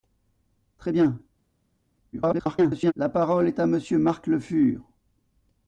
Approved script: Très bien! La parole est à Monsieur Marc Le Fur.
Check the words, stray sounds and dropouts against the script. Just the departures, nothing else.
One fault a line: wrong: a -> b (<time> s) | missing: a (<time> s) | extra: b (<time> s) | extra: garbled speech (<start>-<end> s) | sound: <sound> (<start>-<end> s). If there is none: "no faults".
extra: garbled speech (2.1-2.9 s)